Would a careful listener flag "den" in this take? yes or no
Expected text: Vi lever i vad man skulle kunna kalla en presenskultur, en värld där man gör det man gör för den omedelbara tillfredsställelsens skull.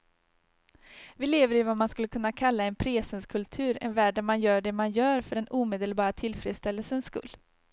no